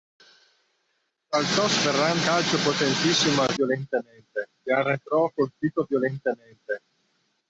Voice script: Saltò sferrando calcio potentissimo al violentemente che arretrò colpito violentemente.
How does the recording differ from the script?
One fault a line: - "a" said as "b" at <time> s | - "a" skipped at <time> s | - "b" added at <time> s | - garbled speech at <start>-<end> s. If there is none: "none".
none